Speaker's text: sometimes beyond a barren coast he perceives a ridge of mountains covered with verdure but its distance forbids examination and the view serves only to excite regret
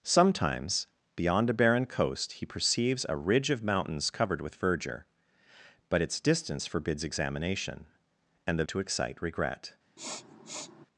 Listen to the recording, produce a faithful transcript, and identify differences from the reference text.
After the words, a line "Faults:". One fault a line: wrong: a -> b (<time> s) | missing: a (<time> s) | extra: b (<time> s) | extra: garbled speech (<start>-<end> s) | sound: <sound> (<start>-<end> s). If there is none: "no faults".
sometimes beyond a barren coast he perceives a ridge of mountains covered with verdure but its distance forbids examination and the to excite regret
Faults:
missing: view serves only (8.6 s)
sound: sniff (10.0-10.9 s)